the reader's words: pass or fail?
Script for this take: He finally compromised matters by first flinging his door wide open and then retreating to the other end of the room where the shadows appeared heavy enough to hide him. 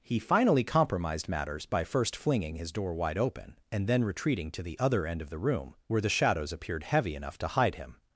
pass